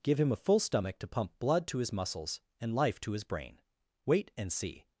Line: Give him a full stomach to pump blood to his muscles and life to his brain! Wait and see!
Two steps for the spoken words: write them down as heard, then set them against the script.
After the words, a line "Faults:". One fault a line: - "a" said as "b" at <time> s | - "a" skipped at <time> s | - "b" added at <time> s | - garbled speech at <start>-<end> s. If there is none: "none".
Give him a full stomach to pump blood to his muscles and life to his brain! Wait and see!
Faults:
none